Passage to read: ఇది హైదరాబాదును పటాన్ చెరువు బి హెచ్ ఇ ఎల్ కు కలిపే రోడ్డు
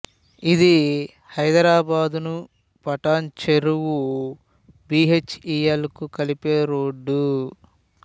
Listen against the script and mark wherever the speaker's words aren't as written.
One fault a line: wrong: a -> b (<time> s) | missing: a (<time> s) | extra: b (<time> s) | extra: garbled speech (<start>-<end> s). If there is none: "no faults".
no faults